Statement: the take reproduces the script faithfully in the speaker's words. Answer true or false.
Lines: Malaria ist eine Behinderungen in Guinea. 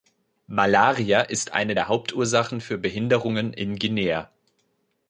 false